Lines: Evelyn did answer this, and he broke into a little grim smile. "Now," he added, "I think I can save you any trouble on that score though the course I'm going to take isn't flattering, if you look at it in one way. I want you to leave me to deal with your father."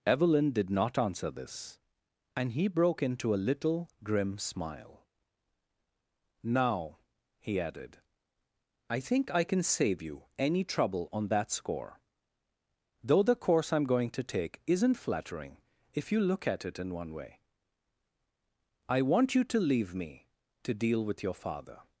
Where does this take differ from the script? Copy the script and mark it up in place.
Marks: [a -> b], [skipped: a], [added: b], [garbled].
Evelyn did [added: not] answer this, and he broke into a little grim smile. "Now," he added, "I think I can save you any trouble on that score though the course I'm going to take isn't flattering, if you look at it in one way. I want you to leave me to deal with your father."